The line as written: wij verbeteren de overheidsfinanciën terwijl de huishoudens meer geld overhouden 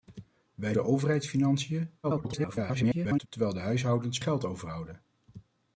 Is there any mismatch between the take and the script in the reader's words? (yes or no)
yes